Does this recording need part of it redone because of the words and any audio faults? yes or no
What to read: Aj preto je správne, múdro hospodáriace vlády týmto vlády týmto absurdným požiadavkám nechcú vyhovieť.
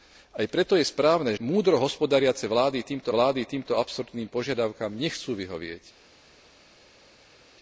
no